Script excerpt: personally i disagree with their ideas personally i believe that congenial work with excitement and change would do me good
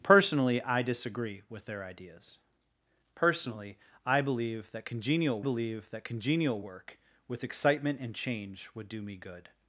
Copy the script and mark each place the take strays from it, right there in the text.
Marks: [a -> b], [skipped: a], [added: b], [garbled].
personally i disagree with their ideas personally i believe that congenial [added: believe that congenial] work with excitement and change would do me good